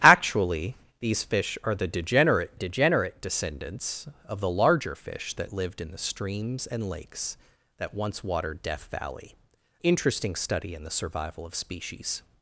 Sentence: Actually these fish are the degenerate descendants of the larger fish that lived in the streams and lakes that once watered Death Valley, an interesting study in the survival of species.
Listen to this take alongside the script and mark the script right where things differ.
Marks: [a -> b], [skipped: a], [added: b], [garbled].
Actually these fish are the degenerate [added: degenerate] descendants of the larger fish that lived in the streams and lakes that once watered Death Valley, [skipped: an] interesting study in the survival of species.